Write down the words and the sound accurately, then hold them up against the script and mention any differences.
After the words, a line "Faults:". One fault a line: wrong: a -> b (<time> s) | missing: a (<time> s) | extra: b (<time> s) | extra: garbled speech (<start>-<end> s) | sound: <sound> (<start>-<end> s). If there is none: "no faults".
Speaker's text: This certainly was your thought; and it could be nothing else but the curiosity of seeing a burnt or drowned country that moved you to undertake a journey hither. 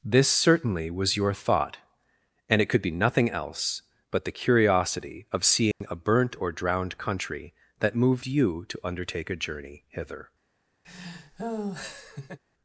This certainly was your thought; and it could be nothing else but the curiosity of seeing a burnt or drowned country that moved you to undertake a journey hither.
Faults:
sound: dropout (5.7-5.8 s)
sound: laugh (10.8-12.4 s)